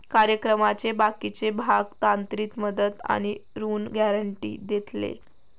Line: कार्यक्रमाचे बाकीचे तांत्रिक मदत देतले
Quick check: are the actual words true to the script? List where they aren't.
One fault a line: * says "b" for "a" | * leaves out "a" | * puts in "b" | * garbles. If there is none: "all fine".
* puts in "भाग"
* puts in "आणि ऋण गॅरेंटी"